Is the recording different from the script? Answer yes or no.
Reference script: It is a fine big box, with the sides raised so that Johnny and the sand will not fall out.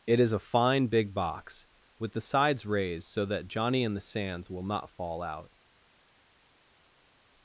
yes